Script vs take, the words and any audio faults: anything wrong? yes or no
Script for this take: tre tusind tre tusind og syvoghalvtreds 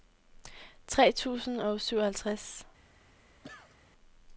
yes